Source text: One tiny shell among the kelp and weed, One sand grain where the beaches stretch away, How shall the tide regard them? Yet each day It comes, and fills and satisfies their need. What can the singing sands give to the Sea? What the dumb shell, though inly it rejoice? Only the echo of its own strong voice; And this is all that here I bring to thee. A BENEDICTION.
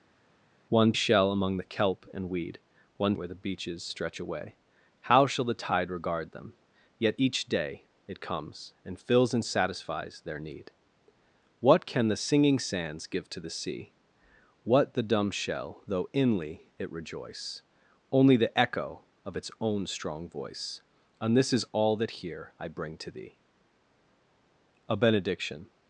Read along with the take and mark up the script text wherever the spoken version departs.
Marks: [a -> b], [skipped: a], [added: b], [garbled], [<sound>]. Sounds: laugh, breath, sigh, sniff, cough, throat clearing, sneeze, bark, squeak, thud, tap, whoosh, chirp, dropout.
One [skipped: tiny] shell among the kelp and weed, One [skipped: sand grain] where the beaches stretch away, How shall the tide regard them? Yet each day It comes, and fills and satisfies their need. What can the singing sands give to the Sea? What the dumb shell, though inly it rejoice? Only the echo of its own strong voice; And this is all that here I bring to thee. A BENEDICTION.